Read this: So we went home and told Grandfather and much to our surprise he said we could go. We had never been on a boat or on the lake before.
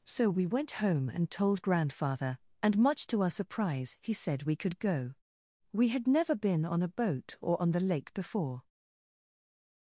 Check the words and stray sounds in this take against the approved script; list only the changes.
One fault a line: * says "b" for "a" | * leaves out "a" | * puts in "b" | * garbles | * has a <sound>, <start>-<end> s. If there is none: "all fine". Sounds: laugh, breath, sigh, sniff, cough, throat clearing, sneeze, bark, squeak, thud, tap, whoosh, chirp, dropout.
all fine